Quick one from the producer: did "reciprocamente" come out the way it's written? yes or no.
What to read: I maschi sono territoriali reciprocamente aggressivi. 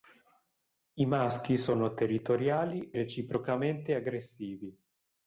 yes